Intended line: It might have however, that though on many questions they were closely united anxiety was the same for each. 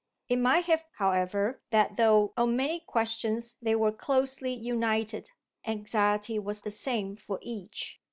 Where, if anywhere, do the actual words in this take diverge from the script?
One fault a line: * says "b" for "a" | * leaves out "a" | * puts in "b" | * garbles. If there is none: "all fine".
all fine